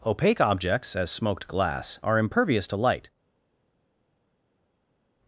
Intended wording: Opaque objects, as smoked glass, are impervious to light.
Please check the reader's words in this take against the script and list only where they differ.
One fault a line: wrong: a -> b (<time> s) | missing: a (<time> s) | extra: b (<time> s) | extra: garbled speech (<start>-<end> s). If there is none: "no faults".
no faults